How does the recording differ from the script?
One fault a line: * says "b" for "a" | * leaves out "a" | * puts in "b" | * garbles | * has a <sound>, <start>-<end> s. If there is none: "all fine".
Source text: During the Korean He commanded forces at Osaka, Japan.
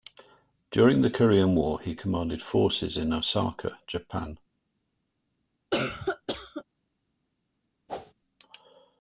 * puts in "War"
* says "in" for "at"
* has a cough, 5.7-6.6 s
* has a whoosh, 7.9-8.1 s